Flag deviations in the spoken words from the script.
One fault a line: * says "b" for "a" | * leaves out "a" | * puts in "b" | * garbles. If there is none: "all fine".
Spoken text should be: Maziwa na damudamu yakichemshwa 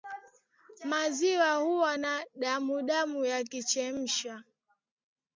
* puts in "huwa"